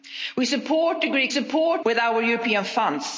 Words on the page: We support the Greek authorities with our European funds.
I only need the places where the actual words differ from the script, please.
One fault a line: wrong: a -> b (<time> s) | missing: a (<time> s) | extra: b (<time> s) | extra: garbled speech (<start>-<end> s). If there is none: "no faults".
wrong: authorities -> support (1.3 s)